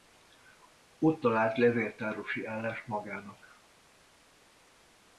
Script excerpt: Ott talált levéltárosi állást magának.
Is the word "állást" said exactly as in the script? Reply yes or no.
yes